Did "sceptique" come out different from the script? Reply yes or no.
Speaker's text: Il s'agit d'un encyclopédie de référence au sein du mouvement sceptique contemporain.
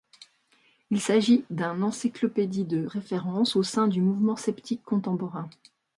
no